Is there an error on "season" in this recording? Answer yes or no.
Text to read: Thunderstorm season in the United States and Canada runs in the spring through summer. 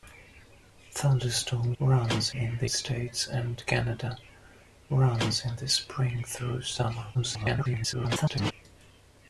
yes